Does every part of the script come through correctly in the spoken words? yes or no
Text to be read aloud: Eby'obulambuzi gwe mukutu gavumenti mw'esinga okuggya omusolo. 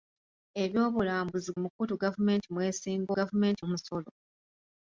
no